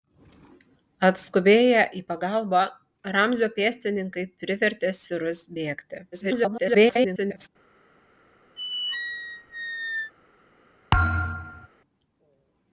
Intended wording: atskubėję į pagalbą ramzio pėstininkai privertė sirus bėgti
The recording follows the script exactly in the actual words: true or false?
false